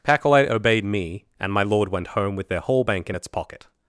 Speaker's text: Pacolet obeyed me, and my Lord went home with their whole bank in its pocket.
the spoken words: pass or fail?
pass